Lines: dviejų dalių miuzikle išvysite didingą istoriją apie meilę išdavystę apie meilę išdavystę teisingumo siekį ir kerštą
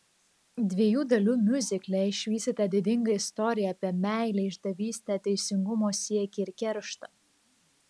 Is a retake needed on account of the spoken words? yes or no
yes